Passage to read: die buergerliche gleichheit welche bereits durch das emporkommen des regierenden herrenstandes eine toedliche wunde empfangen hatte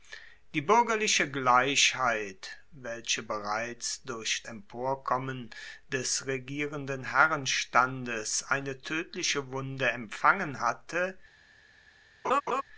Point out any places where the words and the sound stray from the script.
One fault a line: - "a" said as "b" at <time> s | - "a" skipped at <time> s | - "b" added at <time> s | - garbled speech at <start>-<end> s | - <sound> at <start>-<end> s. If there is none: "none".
- "das" skipped at 4.4 s
- laugh at 12.2-12.6 s